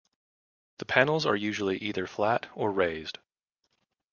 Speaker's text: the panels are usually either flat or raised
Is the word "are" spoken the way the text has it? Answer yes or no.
yes